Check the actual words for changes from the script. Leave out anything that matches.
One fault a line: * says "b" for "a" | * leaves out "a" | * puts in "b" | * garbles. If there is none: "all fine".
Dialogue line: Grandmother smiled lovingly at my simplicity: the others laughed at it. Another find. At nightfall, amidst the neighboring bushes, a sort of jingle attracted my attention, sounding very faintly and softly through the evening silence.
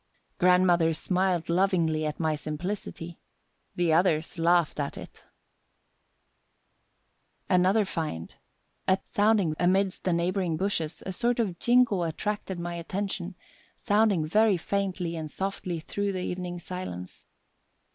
* says "sounding" for "nightfall"